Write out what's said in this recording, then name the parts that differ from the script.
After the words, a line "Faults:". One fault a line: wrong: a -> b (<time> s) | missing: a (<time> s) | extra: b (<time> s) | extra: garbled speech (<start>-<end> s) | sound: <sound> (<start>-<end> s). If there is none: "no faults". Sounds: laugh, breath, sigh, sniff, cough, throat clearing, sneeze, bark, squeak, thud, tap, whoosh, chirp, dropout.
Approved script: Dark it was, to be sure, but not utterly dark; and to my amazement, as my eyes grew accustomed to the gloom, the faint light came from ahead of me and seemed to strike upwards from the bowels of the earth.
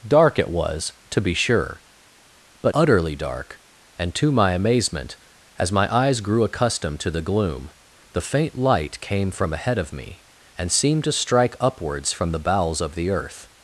Dark it was, to be sure, but utterly dark; and to my amazement, as my eyes grew accustomed to the gloom, the faint light came from ahead of me and seemed to strike upwards from the bowels of the earth.
Faults:
missing: not (2.7 s)